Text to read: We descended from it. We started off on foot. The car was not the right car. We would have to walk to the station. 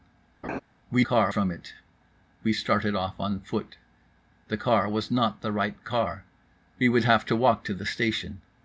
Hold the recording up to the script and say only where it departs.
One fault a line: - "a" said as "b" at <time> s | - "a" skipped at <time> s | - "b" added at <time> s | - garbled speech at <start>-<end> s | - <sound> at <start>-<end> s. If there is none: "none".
- laugh at 0.4-0.6 s
- "descended" said as "car" at 1.0 s